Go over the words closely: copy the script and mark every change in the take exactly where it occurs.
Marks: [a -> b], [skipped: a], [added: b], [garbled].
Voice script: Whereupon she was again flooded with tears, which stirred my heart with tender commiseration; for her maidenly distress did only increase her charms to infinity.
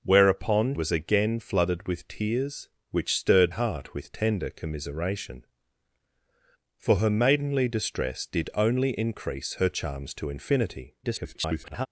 Whereupon [skipped: she] was again flooded with tears, which stirred [skipped: my] heart with tender commiseration; for her maidenly distress did only increase her charms to infinity. [garbled]